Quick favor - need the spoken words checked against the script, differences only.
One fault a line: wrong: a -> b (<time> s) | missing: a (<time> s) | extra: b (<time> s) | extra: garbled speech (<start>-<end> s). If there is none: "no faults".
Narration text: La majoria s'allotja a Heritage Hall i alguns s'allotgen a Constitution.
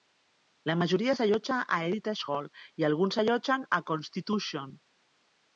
no faults